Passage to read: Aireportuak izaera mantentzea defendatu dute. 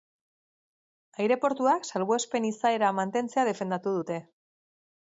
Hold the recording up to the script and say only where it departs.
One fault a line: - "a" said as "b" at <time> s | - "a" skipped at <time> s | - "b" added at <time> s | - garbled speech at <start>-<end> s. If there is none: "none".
- "salbuespen" added at 1.9 s